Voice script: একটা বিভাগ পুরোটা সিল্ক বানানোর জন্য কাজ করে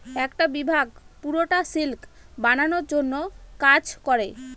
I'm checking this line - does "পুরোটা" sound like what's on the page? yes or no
yes